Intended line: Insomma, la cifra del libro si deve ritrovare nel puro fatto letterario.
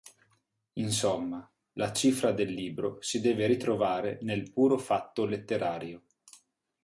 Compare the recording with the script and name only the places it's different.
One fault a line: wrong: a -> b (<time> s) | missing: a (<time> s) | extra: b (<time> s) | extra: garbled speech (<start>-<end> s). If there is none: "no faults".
no faults